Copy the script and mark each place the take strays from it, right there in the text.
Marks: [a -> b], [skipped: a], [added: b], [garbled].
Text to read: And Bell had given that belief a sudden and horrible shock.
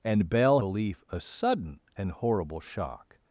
And Bell [skipped: had given that] belief a sudden and horrible shock.